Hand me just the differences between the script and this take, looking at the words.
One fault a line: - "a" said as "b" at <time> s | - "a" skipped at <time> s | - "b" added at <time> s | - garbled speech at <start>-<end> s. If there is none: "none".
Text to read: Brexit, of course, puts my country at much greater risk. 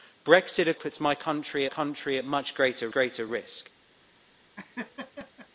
- "course" skipped at 0.8 s
- "country" added at 1.6 s
- "greater" added at 2.9 s